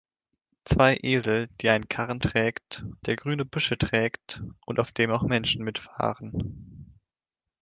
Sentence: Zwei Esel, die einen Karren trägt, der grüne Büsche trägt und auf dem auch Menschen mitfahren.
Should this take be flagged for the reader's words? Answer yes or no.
no